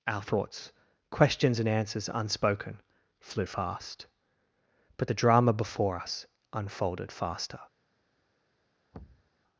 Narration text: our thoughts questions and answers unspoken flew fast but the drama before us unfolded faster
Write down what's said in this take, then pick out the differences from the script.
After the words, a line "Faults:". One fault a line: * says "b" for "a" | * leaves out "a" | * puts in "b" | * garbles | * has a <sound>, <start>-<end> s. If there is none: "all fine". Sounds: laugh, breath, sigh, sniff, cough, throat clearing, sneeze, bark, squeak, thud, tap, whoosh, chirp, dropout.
our thoughts questions and answers unspoken flew fast but the drama before us unfolded faster
Faults:
* has a thud, 8.9-9.3 s